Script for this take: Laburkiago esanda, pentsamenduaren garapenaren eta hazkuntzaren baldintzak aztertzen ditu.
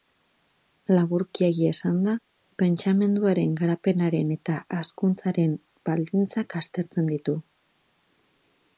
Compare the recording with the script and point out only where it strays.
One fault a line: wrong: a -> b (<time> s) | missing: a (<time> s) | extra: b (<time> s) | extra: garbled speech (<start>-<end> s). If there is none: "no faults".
no faults